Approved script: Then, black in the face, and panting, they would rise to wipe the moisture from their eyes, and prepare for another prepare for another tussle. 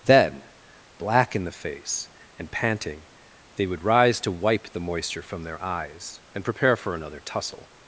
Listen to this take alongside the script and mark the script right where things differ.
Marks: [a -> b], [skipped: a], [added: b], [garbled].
Then, black in the face, and panting, they would rise to wipe the moisture from their eyes, and prepare for another [skipped: prepare for another] tussle.